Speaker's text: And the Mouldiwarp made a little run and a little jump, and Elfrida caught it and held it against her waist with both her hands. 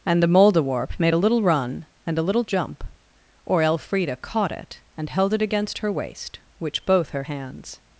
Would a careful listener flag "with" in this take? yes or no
yes